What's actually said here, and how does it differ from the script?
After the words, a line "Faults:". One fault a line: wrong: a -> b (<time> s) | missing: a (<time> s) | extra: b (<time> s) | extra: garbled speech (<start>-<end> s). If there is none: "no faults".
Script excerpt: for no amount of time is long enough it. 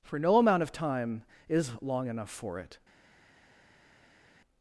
for no amount of time is long enough for it.
Faults:
extra: for (2.3 s)